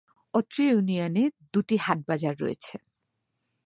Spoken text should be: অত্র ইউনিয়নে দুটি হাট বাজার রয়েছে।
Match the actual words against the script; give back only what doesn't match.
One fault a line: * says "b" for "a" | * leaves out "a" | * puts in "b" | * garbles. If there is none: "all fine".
all fine